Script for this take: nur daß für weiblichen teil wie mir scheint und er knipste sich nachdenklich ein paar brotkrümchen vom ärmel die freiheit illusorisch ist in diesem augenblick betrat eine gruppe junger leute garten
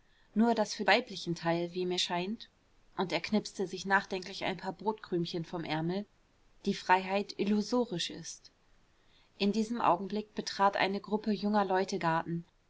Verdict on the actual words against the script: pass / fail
pass